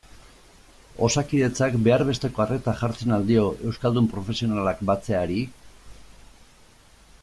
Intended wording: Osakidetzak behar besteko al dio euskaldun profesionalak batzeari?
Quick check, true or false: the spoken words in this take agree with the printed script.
false